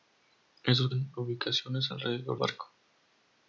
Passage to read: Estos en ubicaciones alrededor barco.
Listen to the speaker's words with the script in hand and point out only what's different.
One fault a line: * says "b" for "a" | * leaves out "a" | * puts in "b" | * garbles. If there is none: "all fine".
all fine